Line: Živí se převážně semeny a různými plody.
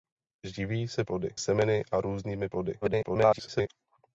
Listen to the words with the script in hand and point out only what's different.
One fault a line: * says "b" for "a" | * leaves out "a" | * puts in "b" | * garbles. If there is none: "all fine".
* says "plody" for "převážně"
* garbles